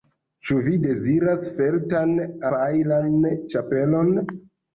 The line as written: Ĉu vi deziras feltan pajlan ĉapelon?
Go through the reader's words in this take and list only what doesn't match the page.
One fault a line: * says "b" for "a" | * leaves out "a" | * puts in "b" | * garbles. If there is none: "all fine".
all fine